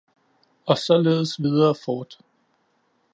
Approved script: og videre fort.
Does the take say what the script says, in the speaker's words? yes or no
no